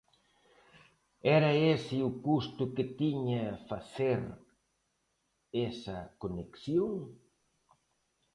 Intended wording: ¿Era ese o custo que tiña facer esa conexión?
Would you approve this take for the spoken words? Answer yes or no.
yes